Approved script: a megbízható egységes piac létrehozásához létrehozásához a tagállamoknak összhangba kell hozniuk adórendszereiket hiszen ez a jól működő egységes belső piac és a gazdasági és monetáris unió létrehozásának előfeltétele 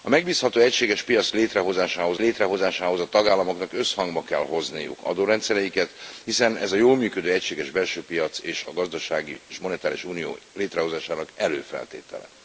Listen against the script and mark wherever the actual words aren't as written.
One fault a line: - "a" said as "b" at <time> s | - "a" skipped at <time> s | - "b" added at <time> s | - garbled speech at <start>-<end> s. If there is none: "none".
none